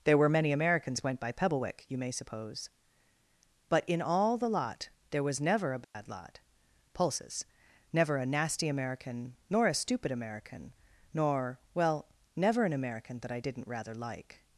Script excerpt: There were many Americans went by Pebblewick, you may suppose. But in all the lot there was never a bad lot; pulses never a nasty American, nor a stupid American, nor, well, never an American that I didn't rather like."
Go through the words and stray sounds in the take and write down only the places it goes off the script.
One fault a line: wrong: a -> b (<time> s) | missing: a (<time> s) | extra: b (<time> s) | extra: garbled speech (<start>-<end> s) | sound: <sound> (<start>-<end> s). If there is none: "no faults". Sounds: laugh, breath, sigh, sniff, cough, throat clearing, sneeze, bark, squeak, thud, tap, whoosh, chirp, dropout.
sound: dropout (5.8-5.9 s)